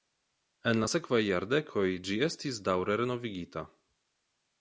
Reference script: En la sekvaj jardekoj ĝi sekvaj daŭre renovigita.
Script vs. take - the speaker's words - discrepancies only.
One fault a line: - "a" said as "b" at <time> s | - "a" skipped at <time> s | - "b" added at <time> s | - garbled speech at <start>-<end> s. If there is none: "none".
- "sekvaj" said as "estis" at 2.3 s